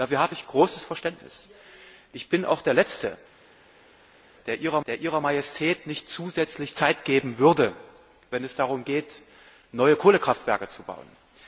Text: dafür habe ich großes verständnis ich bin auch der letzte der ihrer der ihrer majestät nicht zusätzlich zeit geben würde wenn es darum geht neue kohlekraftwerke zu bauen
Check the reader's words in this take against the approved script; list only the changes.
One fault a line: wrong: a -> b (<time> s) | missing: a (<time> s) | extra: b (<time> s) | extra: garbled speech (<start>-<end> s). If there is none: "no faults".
no faults